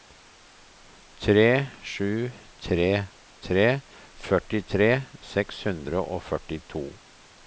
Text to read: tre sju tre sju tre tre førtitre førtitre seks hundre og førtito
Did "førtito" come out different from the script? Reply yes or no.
no